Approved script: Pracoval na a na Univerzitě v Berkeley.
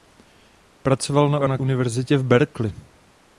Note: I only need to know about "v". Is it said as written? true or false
true